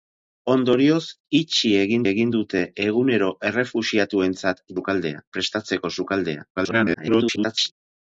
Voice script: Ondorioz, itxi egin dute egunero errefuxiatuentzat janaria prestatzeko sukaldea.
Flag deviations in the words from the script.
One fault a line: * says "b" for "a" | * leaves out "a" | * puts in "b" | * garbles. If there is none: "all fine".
* puts in "egin"
* says "sukaldea" for "janaria"
* garbles